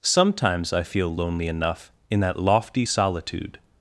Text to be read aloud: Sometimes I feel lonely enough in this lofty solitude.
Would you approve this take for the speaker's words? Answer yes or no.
no